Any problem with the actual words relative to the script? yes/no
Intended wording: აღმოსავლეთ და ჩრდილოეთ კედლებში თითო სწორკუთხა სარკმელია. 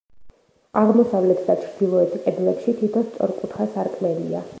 no